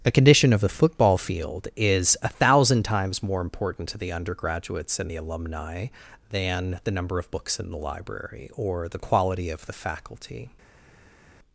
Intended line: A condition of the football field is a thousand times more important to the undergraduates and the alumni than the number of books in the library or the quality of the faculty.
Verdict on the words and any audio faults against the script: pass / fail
pass